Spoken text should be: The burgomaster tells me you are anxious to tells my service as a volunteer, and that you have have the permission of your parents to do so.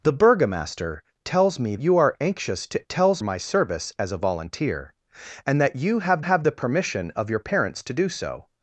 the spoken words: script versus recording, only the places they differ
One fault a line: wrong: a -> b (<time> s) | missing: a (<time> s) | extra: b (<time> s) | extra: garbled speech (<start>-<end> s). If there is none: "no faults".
no faults